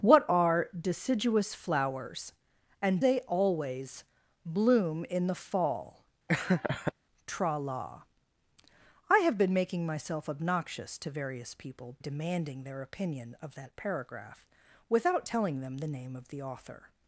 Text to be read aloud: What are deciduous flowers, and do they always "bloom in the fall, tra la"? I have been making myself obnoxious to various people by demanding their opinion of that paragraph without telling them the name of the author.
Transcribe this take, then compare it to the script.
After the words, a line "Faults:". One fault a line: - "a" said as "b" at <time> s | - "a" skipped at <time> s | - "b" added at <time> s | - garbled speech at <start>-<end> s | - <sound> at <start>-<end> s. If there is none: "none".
What are deciduous flowers, and they always "bloom in the fall, tra la"? I have been making myself obnoxious to various people demanding their opinion of that paragraph without telling them the name of the author.
Faults:
- "do" skipped at 3.0 s
- laugh at 6.3-6.9 s
- "by" skipped at 11.9 s